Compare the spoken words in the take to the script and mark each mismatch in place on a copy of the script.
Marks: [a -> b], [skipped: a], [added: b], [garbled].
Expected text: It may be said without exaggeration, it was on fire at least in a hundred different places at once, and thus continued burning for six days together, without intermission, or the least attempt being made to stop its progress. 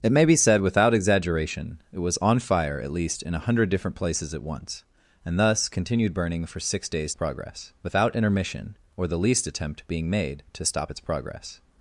It may be said without exaggeration, it was on fire at least in a hundred different places at once, and thus continued burning for six days [together, -> progress] without intermission, or the least attempt being made to stop its progress.